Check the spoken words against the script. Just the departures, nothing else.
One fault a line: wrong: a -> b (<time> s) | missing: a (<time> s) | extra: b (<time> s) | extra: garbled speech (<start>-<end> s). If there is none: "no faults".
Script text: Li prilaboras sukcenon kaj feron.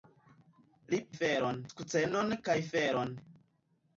wrong: prilaboras -> feron (1.2 s)